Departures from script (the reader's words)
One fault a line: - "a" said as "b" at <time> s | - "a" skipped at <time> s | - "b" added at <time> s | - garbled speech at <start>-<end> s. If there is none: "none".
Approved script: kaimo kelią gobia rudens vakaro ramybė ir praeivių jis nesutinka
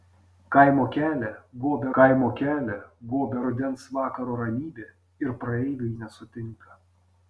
- "kaimo kelią gobia" added at 2.0 s
- "jis" skipped at 5.9 s